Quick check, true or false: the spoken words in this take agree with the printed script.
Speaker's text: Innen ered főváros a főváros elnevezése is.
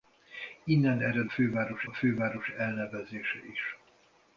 true